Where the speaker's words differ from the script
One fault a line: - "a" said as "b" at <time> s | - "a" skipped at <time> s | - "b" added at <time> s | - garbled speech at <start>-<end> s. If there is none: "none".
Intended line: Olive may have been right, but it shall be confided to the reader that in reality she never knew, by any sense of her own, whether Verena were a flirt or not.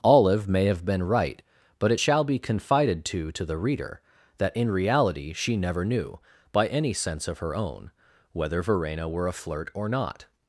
- "to" added at 3.3 s